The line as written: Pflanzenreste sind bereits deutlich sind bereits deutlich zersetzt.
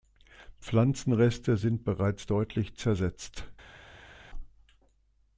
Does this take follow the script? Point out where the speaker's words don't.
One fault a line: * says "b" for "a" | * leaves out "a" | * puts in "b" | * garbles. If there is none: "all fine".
* leaves out "sind bereits deutlich"